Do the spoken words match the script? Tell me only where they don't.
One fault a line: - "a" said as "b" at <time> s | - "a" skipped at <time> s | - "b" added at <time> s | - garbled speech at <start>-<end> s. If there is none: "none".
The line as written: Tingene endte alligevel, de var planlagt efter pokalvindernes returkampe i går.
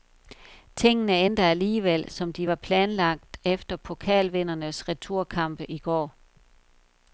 - "som" added at 2.1 s